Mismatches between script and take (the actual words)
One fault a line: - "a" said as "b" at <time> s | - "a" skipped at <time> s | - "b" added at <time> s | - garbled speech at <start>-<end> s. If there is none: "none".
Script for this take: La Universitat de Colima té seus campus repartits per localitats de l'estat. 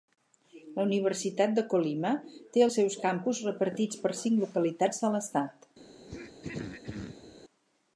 - "els" added at 2.7 s
- "cinc" added at 4.2 s